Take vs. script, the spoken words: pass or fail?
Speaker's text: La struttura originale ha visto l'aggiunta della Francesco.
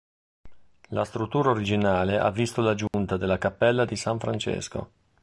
fail